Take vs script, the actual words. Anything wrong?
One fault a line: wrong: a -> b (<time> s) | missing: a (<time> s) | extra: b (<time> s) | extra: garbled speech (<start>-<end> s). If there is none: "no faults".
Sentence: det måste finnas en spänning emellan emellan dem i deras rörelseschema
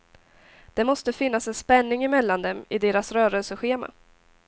missing: emellan (2.4 s)